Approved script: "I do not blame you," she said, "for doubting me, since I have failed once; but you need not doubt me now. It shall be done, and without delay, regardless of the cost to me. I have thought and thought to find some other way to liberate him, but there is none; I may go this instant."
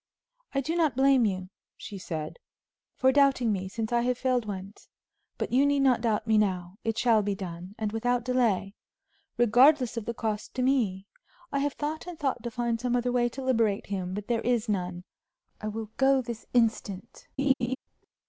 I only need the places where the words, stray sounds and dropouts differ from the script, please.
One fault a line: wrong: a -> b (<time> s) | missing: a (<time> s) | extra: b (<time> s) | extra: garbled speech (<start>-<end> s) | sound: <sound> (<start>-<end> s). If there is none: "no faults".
wrong: may -> will (15.7 s)
sound: laugh (17.4-17.8 s)